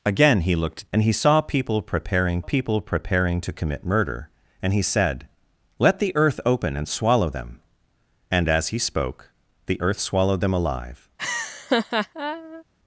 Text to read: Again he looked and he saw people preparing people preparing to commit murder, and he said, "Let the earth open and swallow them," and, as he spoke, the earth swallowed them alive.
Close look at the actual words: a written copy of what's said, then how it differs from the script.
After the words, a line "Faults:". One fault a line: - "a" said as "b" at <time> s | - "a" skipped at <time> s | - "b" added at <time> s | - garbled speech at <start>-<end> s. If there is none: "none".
Again he looked and he saw people preparing people preparing to commit murder, and he said, "Let the earth open and swallow them," and, as he spoke, the earth swallowed them alive.
Faults:
none